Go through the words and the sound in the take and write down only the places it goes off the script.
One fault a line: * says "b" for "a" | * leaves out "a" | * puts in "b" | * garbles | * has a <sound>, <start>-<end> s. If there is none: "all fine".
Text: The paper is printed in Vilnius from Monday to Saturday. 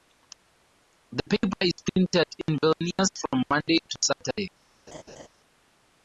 * has a dropout, 3.0-3.0 s
* has a laugh, 4.9-5.3 s